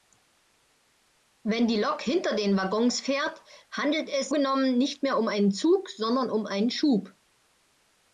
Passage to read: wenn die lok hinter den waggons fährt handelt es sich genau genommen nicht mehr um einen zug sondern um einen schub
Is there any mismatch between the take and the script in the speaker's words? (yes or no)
yes